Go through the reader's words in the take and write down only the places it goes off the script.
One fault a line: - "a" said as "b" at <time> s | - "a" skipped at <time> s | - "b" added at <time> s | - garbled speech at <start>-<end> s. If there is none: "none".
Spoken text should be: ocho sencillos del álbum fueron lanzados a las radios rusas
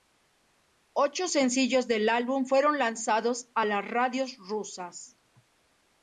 none